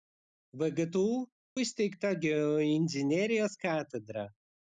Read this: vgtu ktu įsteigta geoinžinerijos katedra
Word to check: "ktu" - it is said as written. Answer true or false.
false